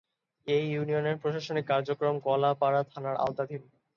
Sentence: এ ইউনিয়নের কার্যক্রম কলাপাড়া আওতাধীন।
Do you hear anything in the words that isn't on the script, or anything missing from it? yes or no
yes